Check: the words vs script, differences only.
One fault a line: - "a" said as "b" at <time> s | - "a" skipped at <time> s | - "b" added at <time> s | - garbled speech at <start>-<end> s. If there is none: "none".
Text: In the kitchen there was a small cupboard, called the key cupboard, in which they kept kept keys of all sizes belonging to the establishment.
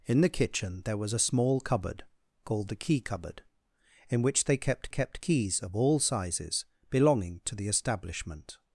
none